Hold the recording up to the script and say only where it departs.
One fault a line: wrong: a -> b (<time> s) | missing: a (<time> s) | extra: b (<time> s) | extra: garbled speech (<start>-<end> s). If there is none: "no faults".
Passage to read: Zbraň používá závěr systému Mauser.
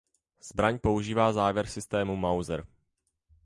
no faults